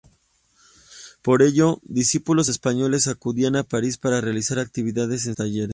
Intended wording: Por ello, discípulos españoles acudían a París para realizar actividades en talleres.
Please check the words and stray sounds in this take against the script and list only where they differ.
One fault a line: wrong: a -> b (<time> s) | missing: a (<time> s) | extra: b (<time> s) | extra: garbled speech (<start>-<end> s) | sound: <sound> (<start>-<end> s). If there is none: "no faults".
no faults